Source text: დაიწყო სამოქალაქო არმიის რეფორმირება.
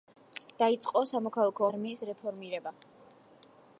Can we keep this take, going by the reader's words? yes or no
yes